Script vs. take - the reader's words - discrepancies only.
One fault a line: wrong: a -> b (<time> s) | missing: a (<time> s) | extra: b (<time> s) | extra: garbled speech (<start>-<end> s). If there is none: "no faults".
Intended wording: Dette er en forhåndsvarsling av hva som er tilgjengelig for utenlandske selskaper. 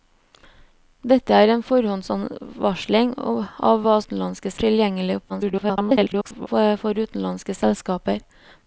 wrong: som -> utenlandske (4.0 s)
extra: garbled speech (5.3-6.5 s)